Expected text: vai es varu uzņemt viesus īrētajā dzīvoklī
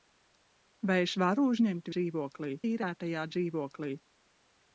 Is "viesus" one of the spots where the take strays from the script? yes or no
yes